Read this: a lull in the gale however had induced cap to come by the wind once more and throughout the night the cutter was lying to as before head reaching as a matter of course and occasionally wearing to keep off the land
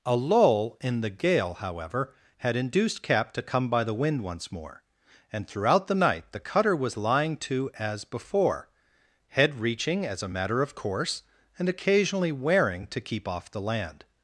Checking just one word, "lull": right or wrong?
right